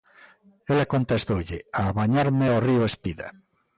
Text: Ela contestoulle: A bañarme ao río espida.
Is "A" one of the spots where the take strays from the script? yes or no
no